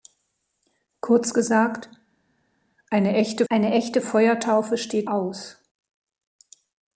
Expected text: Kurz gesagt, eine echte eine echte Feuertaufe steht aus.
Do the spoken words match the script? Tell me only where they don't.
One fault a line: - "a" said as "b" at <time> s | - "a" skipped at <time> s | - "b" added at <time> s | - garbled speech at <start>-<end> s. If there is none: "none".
none